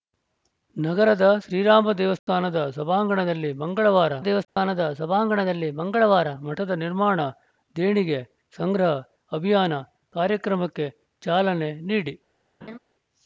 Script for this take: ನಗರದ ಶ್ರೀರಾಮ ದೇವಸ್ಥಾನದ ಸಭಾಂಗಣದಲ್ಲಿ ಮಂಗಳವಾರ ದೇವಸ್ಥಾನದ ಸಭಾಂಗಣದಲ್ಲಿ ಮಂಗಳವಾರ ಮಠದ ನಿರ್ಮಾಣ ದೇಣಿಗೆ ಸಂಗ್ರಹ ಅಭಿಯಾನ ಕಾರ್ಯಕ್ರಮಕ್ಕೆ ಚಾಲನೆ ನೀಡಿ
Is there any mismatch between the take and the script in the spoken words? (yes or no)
no